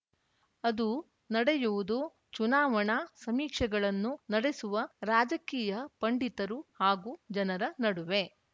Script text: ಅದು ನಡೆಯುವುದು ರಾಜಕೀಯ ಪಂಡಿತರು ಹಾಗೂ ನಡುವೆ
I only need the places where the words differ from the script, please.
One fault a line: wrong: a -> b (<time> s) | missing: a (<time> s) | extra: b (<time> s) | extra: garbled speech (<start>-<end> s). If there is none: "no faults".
extra: ಚುನಾವಣಾ ಸಮೀಕ್ಷೆಗಳನ್ನು ನಡೆಸುವ (2.3 s)
extra: ಜನರ (7.3 s)